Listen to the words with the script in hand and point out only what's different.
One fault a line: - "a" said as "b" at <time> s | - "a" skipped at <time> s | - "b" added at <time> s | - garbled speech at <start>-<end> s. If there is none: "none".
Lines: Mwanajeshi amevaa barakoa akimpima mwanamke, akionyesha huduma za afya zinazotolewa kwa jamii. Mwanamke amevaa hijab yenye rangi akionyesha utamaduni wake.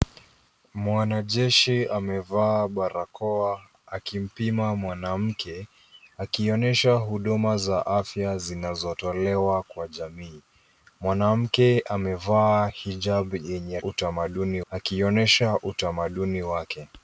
- "rangi" said as "utamaduni" at 13.8 s